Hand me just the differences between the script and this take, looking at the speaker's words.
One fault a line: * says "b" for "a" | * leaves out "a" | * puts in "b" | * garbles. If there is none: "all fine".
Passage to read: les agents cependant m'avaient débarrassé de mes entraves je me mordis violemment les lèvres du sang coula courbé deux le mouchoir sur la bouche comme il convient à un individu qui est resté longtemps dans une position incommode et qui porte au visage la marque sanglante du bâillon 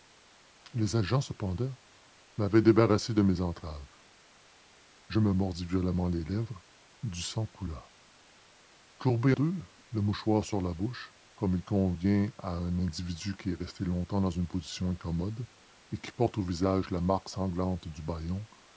all fine